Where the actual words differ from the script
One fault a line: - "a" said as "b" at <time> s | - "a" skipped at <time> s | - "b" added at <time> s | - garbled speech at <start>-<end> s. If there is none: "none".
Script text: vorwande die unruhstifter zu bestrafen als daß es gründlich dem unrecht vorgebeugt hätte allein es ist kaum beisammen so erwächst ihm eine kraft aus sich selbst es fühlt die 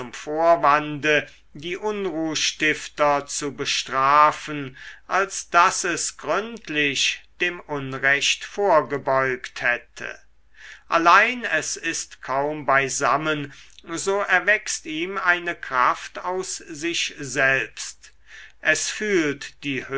none